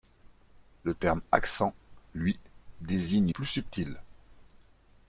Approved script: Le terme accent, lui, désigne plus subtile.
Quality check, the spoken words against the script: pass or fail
pass